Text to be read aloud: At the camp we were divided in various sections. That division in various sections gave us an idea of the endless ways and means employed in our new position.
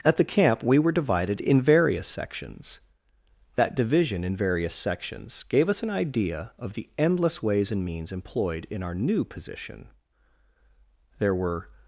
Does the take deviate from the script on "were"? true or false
false